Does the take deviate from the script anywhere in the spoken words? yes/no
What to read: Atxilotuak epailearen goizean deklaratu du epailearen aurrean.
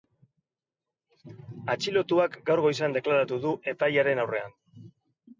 yes